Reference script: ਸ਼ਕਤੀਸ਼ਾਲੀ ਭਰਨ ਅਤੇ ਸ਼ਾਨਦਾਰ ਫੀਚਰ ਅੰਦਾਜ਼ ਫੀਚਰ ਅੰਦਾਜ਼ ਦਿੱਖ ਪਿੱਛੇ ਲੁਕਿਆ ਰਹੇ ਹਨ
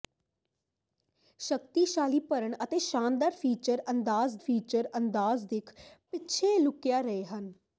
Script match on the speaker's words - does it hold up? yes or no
yes